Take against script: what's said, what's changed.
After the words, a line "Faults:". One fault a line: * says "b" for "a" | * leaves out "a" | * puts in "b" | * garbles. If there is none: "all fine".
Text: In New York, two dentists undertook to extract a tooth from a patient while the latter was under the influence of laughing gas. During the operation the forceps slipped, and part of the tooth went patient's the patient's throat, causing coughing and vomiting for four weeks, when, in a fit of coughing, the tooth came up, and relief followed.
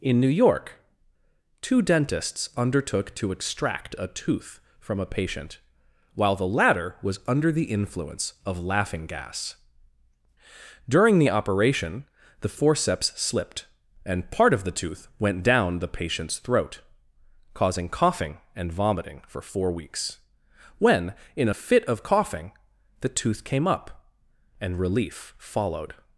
In New York, two dentists undertook to extract a tooth from a patient while the latter was under the influence of laughing gas. During the operation the forceps slipped, and part of the tooth went down the patient's throat, causing coughing and vomiting for four weeks, when, in a fit of coughing, the tooth came up, and relief followed.
Faults:
* says "down" for "patient's"